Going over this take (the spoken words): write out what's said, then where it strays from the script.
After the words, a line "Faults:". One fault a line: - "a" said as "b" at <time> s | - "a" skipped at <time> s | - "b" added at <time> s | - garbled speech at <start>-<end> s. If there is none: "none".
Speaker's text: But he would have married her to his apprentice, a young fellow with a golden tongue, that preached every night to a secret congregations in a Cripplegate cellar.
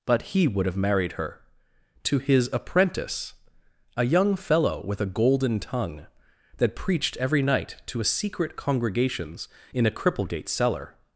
But he would have married her to his apprentice, a young fellow with a golden tongue, that preached every night to a secret congregations in a Cripplegate cellar.
Faults:
none